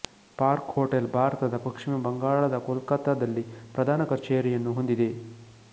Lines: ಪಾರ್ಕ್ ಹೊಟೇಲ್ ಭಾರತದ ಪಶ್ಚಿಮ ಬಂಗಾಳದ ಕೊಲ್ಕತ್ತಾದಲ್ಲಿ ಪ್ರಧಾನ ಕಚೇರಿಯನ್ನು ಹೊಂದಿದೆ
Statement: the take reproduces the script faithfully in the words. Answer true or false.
true